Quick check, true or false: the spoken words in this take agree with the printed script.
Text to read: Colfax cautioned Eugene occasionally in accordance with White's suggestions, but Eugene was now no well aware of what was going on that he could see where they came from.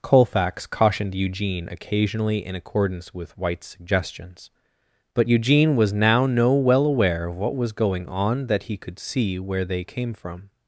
true